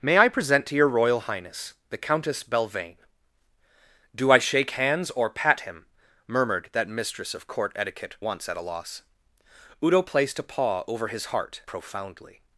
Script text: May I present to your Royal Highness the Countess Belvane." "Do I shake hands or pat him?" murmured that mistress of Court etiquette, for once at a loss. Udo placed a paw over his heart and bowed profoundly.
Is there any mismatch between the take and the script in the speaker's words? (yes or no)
yes